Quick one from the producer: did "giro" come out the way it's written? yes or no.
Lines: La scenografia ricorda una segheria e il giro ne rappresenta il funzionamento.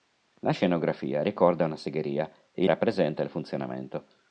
no